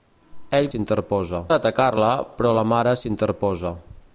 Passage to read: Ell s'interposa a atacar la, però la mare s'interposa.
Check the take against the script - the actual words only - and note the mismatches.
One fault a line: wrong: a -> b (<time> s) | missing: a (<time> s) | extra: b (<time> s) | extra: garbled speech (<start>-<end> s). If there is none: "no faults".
no faults